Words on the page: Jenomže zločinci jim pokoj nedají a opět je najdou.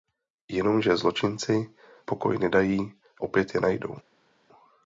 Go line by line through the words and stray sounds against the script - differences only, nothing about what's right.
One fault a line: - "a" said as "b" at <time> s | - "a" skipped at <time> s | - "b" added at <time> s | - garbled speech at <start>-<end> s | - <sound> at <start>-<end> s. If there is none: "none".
- "jim" skipped at 1.7 s
- "a" skipped at 2.9 s